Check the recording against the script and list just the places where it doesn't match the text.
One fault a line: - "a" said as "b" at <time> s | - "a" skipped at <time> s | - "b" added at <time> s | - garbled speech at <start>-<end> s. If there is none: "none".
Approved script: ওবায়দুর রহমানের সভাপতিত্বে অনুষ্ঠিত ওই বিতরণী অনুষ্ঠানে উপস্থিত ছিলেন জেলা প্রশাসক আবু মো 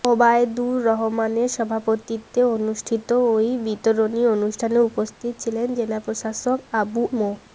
none